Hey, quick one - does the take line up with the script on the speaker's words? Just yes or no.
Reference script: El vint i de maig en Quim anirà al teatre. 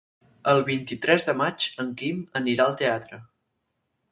no